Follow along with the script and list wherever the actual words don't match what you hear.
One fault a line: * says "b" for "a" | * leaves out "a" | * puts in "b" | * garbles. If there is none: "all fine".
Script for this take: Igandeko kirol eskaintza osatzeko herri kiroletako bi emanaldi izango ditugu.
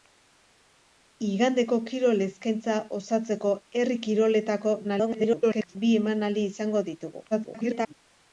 * garbles
* garbles